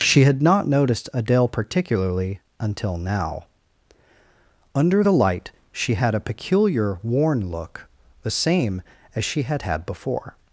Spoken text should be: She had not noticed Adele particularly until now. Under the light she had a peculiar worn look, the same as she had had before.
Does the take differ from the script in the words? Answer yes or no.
no